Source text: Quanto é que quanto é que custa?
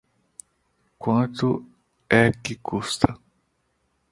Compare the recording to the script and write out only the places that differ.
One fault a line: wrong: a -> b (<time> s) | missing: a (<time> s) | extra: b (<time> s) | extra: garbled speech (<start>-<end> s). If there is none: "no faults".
missing: quanto é que (2.5 s)